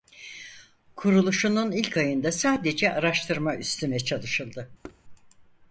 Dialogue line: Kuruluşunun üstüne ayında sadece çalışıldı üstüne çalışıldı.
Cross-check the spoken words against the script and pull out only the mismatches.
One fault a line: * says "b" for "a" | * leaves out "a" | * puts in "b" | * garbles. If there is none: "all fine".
* says "ilk" for "üstüne"
* says "araştırma" for "çalışıldı"